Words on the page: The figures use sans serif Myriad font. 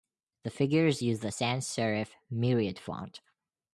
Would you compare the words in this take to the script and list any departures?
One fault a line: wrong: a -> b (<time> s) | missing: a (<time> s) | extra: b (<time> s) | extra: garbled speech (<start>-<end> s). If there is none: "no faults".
extra: the (1.2 s)